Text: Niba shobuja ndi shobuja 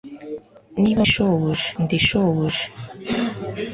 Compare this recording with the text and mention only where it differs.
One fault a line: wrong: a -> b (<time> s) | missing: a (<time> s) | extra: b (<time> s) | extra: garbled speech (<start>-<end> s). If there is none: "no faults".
no faults